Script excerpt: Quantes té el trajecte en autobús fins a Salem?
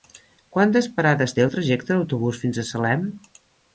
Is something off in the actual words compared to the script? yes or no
yes